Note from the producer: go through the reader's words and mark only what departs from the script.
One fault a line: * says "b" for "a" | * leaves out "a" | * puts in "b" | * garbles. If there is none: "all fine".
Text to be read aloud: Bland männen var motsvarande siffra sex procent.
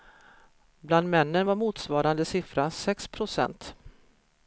all fine